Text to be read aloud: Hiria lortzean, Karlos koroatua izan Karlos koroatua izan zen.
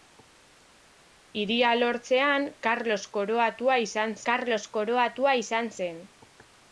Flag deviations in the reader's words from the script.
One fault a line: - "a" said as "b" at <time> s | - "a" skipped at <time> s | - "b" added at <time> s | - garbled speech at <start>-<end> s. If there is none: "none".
none